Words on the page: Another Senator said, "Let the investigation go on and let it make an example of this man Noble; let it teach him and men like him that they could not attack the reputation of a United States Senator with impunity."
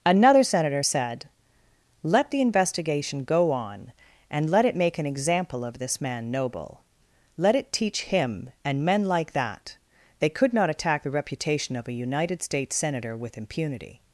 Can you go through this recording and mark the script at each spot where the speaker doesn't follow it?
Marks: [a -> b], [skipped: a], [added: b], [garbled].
Another Senator said, "Let the investigation go on and let it make an example of this man Noble; let it teach him and men like [skipped: him] that they could not attack the reputation of a United States Senator with impunity."